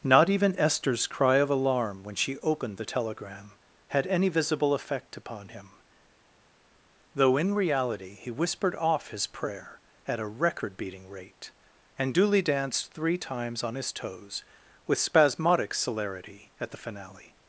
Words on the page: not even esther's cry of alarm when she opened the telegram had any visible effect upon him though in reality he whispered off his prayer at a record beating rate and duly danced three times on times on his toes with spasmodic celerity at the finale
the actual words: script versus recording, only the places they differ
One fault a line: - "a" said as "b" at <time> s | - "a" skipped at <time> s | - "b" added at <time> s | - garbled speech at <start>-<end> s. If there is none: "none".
- "times on" skipped at 13.8 s